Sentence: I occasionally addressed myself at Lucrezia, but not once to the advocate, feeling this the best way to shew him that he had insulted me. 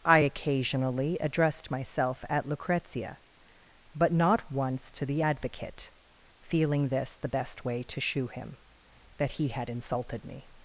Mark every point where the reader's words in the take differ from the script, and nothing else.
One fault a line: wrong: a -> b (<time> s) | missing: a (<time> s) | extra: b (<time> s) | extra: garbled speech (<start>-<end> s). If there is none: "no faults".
no faults